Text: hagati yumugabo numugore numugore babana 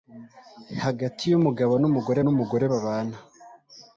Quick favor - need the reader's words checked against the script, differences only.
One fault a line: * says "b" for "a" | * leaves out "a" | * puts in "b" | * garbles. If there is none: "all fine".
all fine